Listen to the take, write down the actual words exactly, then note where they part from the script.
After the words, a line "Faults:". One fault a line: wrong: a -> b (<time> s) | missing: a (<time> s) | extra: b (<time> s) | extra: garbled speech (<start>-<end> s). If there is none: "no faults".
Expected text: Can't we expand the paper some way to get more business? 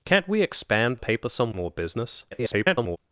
Can't we expand paper some more business? [garbled]
Faults:
missing: the (1.0 s)
missing: way to get (1.5 s)
extra: garbled speech (2.3-3.0 s)